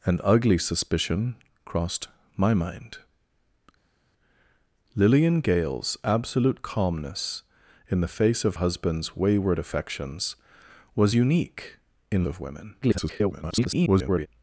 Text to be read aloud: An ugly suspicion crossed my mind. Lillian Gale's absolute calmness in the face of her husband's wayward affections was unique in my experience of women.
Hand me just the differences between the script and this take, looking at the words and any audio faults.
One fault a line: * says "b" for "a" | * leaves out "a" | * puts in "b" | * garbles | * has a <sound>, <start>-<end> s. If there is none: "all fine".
* leaves out "her"
* leaves out "my experience"
* garbles